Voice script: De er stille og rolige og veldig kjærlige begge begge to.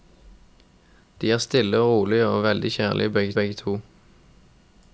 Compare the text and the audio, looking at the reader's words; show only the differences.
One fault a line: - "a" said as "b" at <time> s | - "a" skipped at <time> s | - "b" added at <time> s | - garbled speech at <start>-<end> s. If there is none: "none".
none